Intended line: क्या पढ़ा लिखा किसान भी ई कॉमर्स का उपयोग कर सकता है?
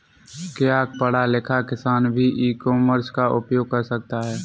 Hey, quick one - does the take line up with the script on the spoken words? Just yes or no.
yes